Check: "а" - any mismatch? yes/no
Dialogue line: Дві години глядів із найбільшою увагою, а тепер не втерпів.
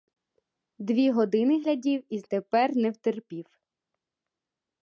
yes